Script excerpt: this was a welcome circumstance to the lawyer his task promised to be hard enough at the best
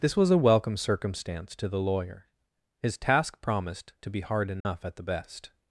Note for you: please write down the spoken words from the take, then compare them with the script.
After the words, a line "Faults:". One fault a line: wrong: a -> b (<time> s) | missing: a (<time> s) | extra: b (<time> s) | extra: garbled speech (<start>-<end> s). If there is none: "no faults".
this was a welcome circumstance to the lawyer his task promised to be hard enough at the best
Faults:
no faults